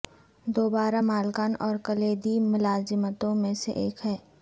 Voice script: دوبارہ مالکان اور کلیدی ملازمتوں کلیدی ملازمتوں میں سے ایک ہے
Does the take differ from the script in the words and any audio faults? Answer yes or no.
yes